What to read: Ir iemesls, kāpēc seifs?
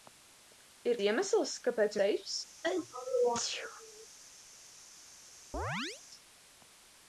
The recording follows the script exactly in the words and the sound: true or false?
false